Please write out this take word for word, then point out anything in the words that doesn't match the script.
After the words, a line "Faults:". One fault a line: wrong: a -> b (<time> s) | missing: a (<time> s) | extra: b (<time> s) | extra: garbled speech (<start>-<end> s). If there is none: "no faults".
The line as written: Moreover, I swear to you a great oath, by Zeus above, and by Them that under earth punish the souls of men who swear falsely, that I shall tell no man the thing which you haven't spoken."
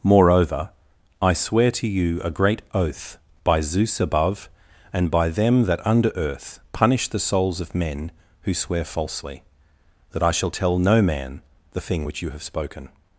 Moreover, I swear to you a great oath, by Zeus above, and by Them that under earth punish the souls of men who swear falsely, that I shall tell no man the thing which you have spoken."
Faults:
wrong: haven't -> have (12.3 s)